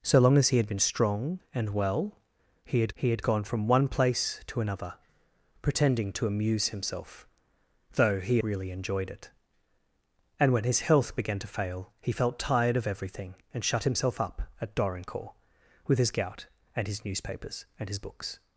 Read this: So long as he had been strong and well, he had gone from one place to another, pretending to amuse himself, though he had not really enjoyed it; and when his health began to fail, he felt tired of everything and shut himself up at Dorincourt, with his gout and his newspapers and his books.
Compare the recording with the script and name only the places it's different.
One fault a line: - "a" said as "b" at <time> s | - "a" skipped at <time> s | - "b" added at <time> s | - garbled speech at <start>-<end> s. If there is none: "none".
- "he had" added at 2.9 s
- "had not" skipped at 8.4 s